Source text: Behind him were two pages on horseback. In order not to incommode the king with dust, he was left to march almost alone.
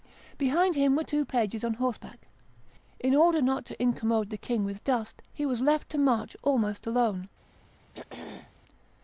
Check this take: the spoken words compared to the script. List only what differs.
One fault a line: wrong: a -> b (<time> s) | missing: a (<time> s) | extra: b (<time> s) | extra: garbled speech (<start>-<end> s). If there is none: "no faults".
no faults